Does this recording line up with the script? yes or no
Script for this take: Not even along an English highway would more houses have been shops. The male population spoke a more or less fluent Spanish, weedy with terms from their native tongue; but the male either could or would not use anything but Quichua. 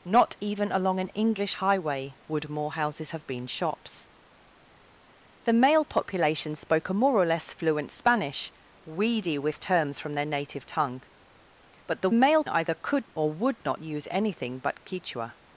yes